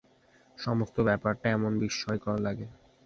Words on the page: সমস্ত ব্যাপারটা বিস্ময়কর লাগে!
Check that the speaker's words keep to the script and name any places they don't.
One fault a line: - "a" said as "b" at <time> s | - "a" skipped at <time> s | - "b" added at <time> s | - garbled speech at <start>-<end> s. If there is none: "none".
- "এমন" added at 1.5 s